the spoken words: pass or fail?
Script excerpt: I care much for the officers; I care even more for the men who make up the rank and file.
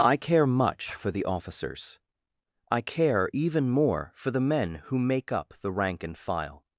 pass